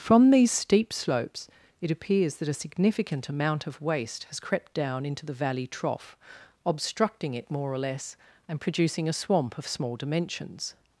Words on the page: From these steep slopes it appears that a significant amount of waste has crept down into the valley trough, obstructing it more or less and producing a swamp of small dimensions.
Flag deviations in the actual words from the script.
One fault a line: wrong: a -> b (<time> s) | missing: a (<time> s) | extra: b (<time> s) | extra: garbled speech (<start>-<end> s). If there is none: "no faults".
no faults